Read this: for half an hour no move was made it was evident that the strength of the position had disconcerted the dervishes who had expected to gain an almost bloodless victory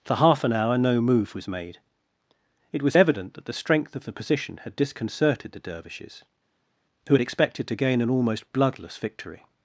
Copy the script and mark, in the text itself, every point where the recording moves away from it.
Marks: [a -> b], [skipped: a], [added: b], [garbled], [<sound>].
for half an hour no move was made it was evident that the strength of the position had disconcerted the dervishes who had expected to gain an almost bloodless victory